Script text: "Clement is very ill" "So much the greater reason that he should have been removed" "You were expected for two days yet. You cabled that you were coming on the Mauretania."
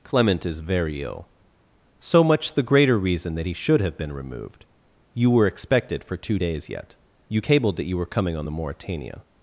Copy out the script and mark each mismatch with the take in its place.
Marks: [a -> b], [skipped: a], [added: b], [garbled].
"Clement is very ill" "So much the greater reason that he should have been removed" "You were expected for two days yet. You cabled that you were coming on the Mauretania."